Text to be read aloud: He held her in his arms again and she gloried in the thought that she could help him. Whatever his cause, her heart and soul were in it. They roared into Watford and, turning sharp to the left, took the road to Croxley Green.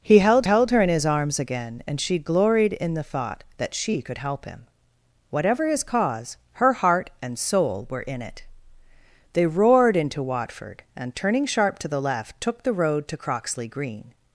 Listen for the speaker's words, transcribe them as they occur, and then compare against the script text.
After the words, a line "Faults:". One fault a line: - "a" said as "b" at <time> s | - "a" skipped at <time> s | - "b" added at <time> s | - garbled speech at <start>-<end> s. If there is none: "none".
He held held her in his arms again and she gloried in the thought that she could help him. Whatever his cause, her heart and soul were in it. They roared into Watford and, turning sharp to the left, took the road to Croxley Green.
Faults:
- "held" added at 0.4 s